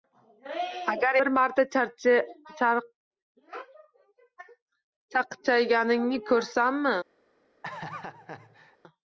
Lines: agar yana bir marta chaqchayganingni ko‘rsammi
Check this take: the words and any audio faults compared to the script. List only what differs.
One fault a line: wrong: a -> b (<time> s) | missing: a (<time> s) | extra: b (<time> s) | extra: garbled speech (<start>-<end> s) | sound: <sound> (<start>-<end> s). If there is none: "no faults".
missing: yana (1.2 s)
sound: laugh (7.6-8.8 s)